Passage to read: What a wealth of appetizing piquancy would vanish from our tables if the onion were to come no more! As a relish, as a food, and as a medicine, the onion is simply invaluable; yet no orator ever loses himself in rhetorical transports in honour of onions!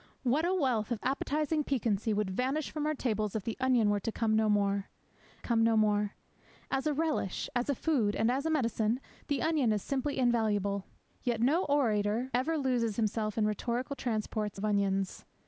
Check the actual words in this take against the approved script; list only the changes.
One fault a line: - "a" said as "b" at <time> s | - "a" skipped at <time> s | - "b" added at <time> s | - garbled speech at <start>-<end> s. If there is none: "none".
- "come no more" added at 5.4 s
- "in honour" skipped at 14.6 s